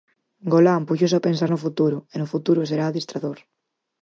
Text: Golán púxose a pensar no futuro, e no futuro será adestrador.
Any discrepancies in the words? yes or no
no